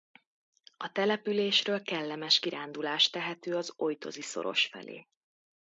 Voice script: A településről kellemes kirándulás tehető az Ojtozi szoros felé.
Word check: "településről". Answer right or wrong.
right